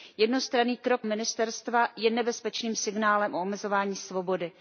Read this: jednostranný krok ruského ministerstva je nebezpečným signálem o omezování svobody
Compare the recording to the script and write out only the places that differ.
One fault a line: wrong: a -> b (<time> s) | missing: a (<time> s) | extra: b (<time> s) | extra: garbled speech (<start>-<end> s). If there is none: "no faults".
missing: ruského (1.1 s)